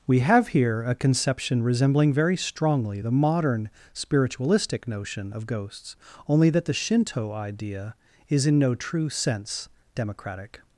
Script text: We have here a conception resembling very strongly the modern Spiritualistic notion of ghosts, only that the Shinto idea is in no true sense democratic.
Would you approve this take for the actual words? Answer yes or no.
yes